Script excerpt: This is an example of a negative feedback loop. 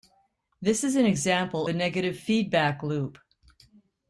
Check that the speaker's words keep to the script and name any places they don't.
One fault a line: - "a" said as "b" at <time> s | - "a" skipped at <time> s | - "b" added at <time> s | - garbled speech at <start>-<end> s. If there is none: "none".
- "of" skipped at 1.7 s